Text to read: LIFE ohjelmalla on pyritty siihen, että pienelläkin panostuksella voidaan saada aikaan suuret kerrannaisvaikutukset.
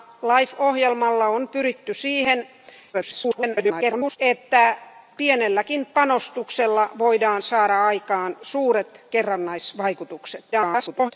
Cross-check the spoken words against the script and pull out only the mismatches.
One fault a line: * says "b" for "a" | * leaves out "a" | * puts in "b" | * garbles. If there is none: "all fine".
* garbles
* garbles